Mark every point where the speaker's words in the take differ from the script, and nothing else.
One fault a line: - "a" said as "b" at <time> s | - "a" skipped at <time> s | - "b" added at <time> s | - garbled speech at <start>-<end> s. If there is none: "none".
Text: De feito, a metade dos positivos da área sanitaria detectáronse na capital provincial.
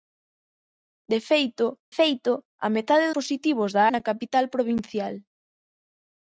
- "feito" added at 2.0 s
- "dos" skipped at 3.1 s
- "área sanitaria detectáronse" skipped at 3.8 s